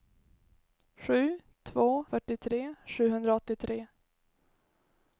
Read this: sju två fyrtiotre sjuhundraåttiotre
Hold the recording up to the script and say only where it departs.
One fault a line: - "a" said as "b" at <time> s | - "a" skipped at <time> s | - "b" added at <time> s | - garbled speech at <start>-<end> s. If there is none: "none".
none